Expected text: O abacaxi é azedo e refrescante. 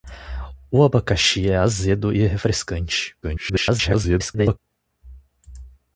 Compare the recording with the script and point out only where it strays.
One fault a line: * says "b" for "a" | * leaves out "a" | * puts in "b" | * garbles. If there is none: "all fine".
* garbles